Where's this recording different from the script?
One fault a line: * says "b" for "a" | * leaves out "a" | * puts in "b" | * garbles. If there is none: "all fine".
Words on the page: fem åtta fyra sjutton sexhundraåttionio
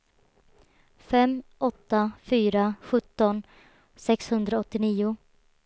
all fine